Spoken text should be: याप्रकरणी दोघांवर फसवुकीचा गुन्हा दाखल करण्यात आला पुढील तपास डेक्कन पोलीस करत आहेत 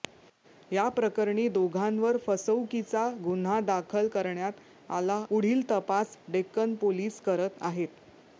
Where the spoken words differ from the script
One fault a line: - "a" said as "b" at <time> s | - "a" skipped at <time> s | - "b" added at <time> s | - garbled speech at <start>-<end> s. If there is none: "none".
none